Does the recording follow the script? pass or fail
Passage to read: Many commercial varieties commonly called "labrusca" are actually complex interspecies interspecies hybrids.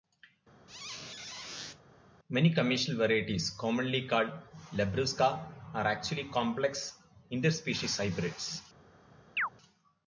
fail